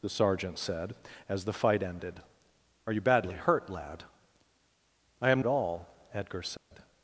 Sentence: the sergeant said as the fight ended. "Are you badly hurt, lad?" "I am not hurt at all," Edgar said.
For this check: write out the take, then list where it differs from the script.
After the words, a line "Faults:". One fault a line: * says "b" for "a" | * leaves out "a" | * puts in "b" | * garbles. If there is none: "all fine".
the sergeant said as the fight ended. "Are you badly hurt, lad?" "I am at all," Edgar said.
Faults:
* leaves out "not hurt"